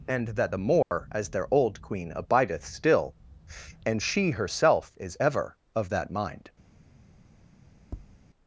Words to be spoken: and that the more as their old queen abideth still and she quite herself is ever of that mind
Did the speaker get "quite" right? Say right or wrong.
wrong